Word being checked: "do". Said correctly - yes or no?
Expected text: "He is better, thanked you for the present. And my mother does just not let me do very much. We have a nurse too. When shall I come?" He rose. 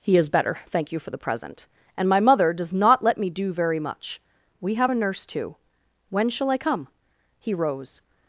yes